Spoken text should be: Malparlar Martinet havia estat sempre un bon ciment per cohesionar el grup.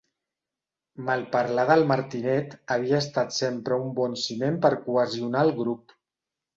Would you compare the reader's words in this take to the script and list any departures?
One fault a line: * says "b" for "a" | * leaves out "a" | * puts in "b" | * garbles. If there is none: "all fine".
* puts in "del"